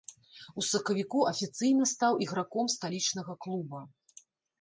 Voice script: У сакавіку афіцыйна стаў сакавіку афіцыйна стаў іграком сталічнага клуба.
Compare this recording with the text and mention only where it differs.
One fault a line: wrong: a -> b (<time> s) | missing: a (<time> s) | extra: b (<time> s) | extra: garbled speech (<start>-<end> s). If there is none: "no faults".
missing: сакавіку афіцыйна стаў (2.1 s)